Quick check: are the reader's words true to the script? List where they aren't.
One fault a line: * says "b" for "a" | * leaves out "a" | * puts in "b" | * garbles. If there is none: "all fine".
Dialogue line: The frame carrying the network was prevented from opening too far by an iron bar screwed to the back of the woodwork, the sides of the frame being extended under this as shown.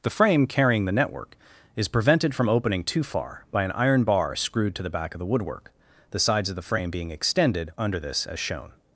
* says "is" for "was"